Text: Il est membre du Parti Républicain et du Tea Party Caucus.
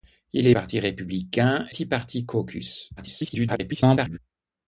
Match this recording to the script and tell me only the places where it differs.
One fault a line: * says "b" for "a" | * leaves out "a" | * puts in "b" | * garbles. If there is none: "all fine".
* leaves out "membre du"
* leaves out "et du"
* garbles